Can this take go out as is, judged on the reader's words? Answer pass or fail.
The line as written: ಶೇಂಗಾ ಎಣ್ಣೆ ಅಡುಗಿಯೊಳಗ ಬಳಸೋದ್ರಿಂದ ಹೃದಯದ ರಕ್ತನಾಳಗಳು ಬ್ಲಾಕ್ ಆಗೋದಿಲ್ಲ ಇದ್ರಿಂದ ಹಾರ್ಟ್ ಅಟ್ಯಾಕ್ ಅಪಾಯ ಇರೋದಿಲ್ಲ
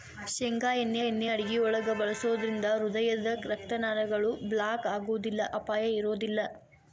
fail